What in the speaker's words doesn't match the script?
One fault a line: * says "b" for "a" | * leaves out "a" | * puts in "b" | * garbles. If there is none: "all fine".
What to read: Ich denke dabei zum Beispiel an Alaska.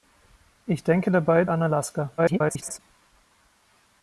* leaves out "zum Beispiel"
* garbles